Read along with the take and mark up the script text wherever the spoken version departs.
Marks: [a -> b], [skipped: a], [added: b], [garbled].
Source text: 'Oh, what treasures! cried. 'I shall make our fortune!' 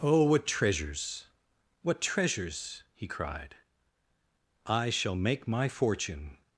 'Oh, what treasures! [added: what treasures he] cried. 'I shall make [our -> my] fortune!'